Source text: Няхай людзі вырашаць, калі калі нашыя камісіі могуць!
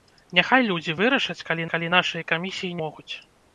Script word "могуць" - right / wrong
right